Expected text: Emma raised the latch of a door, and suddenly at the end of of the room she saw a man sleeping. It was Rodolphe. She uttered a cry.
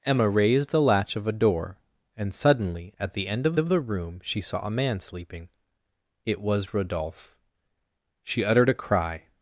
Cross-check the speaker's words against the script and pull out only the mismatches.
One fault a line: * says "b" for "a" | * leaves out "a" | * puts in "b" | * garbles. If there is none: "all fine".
all fine